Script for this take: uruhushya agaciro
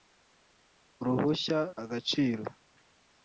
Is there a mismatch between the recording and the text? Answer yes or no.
no